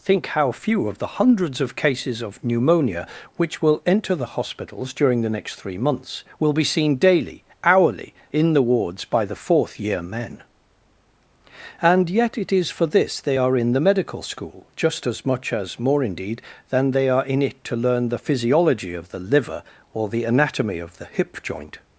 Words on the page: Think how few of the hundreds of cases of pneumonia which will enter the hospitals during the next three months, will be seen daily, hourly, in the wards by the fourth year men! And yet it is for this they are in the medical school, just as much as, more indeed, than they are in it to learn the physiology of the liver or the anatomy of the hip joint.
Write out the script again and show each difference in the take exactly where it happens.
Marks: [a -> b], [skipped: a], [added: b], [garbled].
Think how few of the hundreds of cases of pneumonia which will enter the hospitals during the next three months, will be seen daily, hourly, in the wards by the fourth year men! And yet it is for this they are in the medical school, just as much as, more indeed, than they are in it to learn the physiology of the liver or the anatomy of the hip joint.